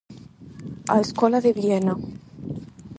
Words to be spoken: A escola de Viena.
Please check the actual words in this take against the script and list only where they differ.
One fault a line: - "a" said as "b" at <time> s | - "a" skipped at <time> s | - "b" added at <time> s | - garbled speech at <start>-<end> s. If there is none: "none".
none